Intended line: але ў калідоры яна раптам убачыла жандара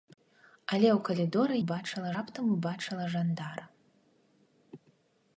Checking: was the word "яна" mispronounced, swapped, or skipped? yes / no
yes